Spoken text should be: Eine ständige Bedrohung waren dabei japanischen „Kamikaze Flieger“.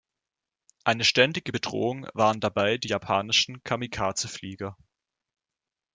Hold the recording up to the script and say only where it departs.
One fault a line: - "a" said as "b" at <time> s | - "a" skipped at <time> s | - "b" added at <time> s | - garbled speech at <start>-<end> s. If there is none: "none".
- "die" added at 2.8 s